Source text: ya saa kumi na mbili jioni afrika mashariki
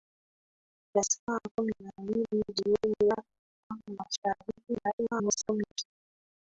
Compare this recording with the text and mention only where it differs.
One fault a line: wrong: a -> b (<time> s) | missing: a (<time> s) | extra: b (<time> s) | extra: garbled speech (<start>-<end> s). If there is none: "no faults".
extra: garbled speech (4.7-5.8 s)